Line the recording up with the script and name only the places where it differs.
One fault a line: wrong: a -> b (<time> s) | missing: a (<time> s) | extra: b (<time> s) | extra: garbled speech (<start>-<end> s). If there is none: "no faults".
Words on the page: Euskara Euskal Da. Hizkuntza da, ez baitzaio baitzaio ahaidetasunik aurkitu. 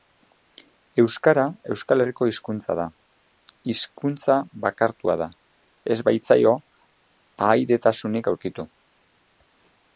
extra: Herriko hizkuntza (2.0 s)
extra: bakartua (4.7 s)
missing: baitzaio (6.6 s)